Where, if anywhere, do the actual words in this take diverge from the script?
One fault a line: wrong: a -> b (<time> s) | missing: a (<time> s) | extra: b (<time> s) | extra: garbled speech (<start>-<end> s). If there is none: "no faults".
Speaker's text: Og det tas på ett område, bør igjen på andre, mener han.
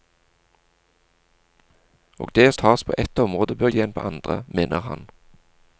no faults